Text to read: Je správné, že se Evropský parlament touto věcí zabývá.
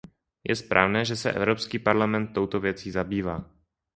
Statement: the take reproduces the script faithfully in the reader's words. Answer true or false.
true